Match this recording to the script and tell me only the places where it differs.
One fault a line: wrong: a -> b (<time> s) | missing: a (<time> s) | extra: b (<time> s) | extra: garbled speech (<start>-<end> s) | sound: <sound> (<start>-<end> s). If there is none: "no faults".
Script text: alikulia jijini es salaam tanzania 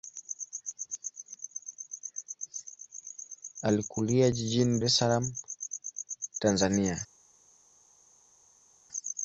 no faults